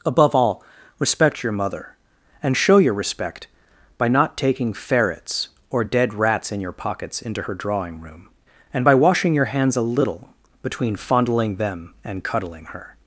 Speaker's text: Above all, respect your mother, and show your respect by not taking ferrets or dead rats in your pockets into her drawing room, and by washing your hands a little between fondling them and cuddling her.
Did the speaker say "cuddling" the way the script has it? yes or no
yes